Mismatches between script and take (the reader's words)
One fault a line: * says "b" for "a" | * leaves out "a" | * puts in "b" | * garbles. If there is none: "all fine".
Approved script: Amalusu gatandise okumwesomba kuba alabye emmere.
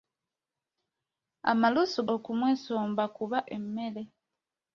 * leaves out "gatandise"
* leaves out "alabye"